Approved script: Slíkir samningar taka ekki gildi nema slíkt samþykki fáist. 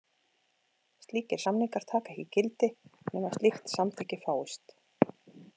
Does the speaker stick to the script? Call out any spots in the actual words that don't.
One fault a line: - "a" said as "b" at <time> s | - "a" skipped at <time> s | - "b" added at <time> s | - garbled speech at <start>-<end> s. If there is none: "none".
none